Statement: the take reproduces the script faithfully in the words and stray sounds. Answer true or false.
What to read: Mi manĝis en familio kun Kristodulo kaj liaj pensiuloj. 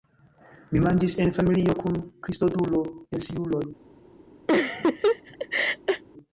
false